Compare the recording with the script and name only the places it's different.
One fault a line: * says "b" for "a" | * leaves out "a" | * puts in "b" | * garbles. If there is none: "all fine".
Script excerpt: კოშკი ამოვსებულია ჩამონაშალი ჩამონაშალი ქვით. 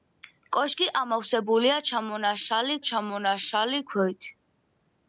all fine